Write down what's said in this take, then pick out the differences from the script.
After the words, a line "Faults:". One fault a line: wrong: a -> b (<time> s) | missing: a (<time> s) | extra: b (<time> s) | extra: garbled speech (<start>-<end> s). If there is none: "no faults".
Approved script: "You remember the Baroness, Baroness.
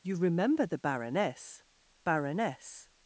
"You remember the Baroness, Baroness.
Faults:
no faults